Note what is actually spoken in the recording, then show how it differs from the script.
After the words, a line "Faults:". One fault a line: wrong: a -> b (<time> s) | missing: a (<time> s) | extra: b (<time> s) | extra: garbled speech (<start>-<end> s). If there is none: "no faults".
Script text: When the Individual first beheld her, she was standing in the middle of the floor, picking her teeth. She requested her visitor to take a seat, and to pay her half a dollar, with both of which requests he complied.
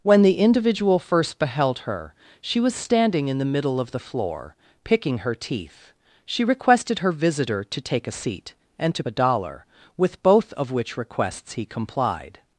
When the Individual first beheld her, she was standing in the middle of the floor, picking her teeth. She requested her visitor to take a seat, and to a dollar, with both of which requests he complied.
Faults:
missing: pay her half (9.0 s)